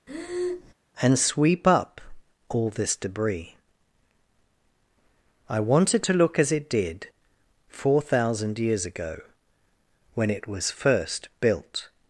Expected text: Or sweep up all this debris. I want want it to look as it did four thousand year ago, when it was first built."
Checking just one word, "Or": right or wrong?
wrong